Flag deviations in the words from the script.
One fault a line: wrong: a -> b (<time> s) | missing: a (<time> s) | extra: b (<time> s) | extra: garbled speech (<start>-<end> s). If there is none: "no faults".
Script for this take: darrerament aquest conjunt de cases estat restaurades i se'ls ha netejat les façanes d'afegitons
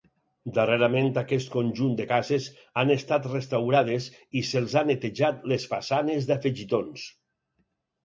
extra: han (2.8 s)